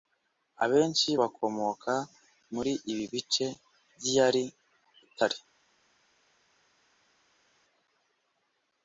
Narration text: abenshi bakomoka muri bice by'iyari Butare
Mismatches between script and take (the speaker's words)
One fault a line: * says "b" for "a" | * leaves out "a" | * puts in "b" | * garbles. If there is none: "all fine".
* puts in "ibi"